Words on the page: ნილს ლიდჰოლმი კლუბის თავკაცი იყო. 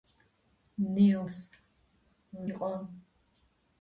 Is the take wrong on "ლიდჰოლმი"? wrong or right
wrong